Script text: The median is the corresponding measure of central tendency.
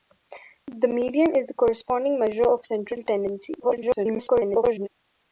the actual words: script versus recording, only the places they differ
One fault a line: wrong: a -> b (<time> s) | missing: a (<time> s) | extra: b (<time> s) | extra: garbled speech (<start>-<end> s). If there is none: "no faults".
extra: garbled speech (3.6-4.9 s)